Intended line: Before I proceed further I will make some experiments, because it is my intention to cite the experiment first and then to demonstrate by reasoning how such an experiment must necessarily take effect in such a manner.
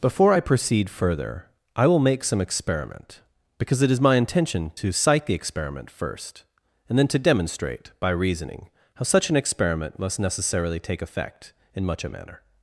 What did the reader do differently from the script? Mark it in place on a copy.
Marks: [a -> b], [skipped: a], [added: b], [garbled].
Before I proceed further I will make some [experiments, -> experiment] because it is my intention to cite the experiment first and then to demonstrate by reasoning how such an experiment must necessarily take effect in [such -> much] a manner.